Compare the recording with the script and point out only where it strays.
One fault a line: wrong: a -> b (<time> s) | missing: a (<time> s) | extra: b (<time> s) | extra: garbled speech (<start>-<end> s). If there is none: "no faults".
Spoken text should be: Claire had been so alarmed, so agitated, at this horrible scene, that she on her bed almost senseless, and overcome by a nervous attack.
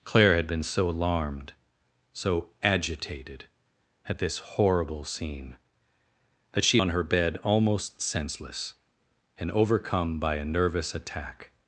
no faults